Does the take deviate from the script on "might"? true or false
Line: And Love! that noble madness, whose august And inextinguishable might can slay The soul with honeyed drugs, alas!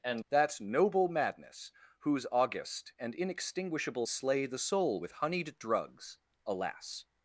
true